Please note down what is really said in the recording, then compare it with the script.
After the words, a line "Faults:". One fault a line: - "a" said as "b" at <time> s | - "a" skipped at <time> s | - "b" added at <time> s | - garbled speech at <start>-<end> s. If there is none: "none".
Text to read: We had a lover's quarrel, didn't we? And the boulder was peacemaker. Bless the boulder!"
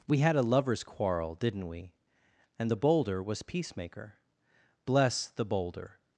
We had a lover's quarrel, didn't we? And the boulder was peacemaker. Bless the boulder!"
Faults:
none